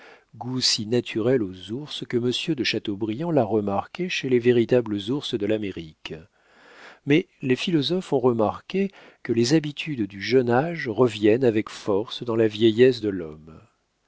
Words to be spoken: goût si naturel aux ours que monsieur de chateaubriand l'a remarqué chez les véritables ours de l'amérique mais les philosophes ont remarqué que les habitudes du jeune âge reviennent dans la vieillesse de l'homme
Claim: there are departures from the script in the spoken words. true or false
true